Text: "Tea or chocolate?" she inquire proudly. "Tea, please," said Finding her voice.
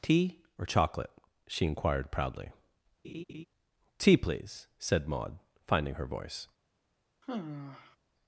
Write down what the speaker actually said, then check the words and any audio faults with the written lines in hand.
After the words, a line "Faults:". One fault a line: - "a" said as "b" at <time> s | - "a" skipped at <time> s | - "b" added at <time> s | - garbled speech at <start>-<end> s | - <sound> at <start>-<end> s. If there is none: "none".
"Tea or chocolate?" she inquired proudly. "Tea, please," said Maud, finding her voice.
Faults:
- "inquire" said as "inquired" at 1.6 s
- laugh at 3.0-3.5 s
- "Maud" added at 5.1 s
- sigh at 7.2-8.0 s